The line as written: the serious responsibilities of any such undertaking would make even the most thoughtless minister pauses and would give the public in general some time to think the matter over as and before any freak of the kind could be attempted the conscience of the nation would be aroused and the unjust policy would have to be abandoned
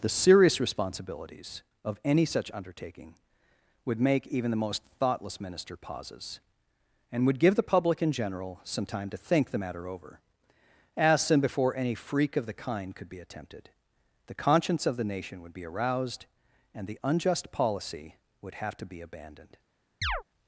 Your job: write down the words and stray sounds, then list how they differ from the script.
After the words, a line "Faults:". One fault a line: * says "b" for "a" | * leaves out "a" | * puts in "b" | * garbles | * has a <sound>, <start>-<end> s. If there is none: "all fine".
the serious responsibilities of any such undertaking would make even the most thoughtless minister pauses and would give the public in general some time to think the matter over as and before any freak of the kind could be attempted the conscience of the nation would be aroused and the unjust policy would have to be abandoned
Faults:
* has a chirp, 20.0-20.2 s